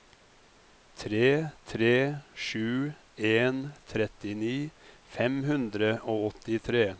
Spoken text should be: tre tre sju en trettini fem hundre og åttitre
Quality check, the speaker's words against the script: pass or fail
pass